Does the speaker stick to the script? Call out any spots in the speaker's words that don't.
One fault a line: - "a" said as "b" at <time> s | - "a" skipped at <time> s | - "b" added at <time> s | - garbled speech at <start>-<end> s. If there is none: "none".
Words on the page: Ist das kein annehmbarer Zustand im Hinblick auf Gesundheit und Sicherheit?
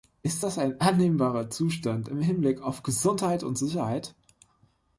- "kein" said as "ein" at 0.6 s